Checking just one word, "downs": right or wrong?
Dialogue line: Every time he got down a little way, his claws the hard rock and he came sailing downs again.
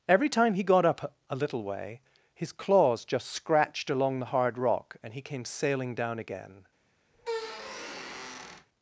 wrong